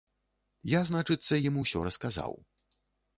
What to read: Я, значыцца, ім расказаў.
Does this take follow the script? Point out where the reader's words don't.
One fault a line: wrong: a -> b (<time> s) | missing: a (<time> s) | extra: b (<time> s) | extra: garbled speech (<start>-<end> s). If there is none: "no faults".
extra: усё (1.6 s)